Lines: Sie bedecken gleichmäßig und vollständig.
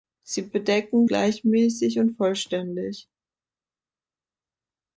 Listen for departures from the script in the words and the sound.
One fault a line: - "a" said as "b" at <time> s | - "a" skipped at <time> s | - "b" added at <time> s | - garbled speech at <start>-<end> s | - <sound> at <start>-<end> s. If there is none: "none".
none